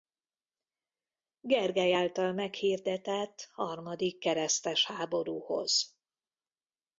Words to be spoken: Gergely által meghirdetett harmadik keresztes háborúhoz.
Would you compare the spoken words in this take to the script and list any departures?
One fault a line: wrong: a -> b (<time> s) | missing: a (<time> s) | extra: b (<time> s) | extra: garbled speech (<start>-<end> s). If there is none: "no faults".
no faults